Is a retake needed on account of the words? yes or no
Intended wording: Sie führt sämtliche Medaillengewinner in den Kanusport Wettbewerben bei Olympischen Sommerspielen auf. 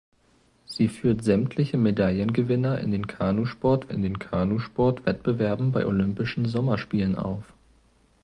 yes